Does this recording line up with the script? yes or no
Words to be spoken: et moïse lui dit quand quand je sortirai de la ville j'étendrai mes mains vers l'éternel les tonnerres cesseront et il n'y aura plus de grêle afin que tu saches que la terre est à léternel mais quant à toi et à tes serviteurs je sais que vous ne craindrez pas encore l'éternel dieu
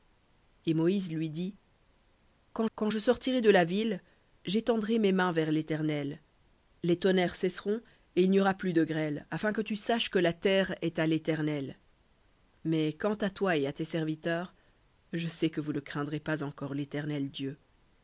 yes